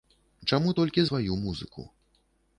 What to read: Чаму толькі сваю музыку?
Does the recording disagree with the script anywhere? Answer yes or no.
no